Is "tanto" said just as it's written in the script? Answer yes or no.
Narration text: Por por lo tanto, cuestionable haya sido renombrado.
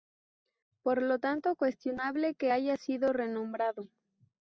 yes